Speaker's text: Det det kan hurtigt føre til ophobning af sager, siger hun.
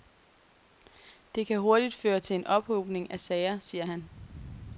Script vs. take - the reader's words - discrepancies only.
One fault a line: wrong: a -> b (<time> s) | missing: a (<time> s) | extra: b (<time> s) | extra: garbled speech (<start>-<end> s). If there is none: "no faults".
missing: det (1.5 s)
extra: en (2.4 s)
wrong: hun -> han (3.9 s)